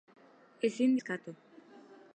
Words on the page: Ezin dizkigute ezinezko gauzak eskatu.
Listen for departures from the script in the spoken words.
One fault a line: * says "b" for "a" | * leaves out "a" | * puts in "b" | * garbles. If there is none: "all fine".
* leaves out "dizkigute ezinezko gauzak"